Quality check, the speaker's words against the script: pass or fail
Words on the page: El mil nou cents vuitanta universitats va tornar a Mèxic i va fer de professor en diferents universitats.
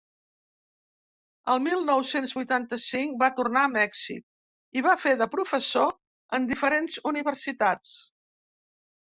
fail